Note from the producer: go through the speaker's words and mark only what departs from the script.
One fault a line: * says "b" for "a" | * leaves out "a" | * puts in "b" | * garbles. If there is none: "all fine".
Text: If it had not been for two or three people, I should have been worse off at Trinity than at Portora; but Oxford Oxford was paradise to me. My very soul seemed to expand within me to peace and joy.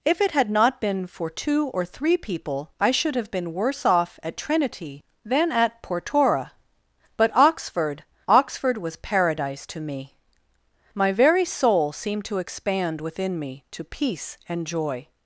all fine